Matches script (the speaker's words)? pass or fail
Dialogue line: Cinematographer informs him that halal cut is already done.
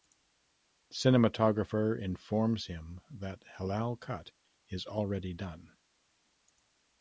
pass